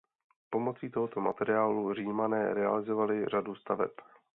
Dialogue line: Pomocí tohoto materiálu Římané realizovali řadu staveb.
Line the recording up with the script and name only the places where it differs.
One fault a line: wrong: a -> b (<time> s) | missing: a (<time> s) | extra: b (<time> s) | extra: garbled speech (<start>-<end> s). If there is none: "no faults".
no faults